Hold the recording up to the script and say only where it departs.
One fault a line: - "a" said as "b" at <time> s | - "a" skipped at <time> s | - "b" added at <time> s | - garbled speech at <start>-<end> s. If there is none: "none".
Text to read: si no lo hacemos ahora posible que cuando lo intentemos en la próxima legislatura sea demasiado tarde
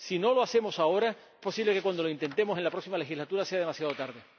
none